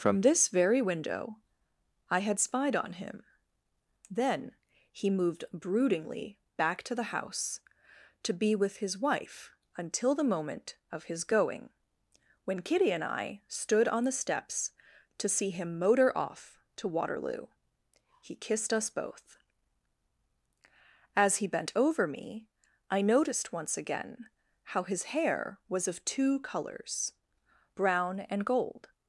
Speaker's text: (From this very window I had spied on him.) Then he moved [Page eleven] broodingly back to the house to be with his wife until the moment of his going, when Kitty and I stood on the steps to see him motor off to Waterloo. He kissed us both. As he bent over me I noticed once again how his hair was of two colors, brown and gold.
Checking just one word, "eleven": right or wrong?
wrong